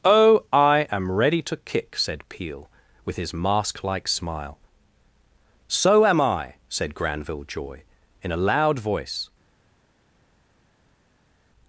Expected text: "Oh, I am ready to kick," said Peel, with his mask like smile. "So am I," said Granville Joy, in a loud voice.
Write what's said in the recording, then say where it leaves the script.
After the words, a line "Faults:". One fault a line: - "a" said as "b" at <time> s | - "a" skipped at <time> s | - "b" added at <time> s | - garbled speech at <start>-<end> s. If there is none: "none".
"Oh, I am ready to kick," said Peel, with his mask like smile. "So am I," said Granville Joy, in a loud voice.
Faults:
none